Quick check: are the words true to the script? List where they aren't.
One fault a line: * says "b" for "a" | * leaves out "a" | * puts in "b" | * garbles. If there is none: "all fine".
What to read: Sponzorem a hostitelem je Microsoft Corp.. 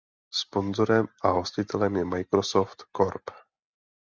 all fine